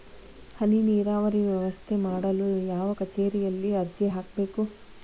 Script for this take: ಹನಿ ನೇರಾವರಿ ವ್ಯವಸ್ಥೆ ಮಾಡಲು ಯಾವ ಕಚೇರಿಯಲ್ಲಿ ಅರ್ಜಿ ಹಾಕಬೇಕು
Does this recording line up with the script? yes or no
yes